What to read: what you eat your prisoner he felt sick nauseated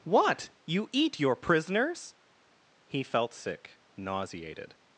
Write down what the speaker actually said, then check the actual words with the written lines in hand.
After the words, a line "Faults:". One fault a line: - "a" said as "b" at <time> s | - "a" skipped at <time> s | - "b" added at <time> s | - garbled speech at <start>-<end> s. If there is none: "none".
what you eat your prisoners he felt sick nauseated
Faults:
- "prisoner" said as "prisoners" at 1.3 s